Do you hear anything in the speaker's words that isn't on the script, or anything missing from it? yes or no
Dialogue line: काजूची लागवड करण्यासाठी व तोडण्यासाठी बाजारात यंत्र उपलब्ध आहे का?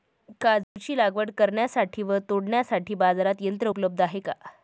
no